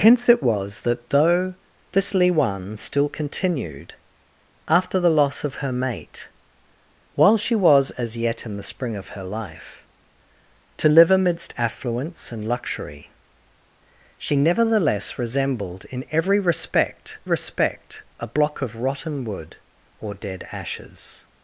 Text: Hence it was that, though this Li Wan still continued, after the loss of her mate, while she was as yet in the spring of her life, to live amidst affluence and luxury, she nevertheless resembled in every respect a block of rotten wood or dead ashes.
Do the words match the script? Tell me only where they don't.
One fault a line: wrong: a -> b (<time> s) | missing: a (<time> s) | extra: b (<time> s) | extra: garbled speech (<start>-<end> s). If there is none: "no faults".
extra: respect (17.2 s)